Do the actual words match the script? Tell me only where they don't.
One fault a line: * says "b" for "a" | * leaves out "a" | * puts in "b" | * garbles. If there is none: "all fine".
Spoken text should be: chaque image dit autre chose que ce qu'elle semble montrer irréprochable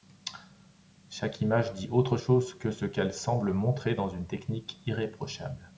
* puts in "dans une technique"